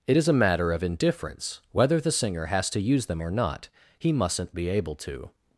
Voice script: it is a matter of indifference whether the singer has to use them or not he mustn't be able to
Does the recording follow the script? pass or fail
pass